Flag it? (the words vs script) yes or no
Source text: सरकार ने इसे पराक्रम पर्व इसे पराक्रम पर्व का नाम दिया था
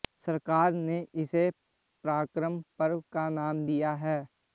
yes